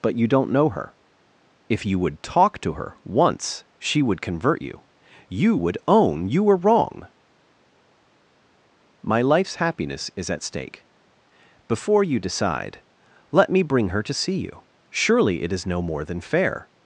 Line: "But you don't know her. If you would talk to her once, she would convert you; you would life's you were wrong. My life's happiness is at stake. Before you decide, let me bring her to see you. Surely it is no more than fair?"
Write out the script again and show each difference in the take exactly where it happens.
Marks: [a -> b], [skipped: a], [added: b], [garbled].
"But you don't know her. If you would talk to her once, she would convert you; you would [life's -> own] you were wrong. My life's happiness is at stake. Before you decide, let me bring her to see you. Surely it is no more than fair?"